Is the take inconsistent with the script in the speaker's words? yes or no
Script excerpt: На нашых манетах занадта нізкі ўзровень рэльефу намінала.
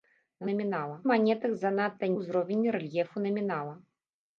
yes